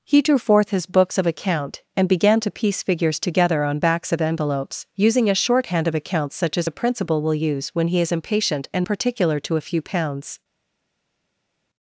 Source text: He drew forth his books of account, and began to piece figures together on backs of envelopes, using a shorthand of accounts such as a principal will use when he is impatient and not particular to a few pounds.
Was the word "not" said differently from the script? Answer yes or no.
yes